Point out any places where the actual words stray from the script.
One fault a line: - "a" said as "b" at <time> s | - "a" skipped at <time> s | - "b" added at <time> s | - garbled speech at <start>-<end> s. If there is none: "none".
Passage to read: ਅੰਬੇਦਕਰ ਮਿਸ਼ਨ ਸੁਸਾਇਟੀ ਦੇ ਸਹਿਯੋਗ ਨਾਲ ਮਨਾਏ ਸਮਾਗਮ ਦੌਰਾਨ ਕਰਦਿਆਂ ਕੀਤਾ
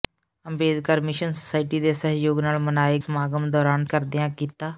none